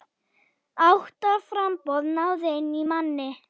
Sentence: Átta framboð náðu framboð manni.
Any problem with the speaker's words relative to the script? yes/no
yes